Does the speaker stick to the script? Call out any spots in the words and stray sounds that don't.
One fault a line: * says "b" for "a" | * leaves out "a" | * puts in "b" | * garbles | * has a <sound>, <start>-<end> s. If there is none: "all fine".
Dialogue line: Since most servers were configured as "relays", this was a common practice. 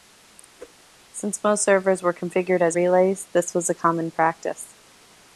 * has a whoosh, 0.6-0.8 s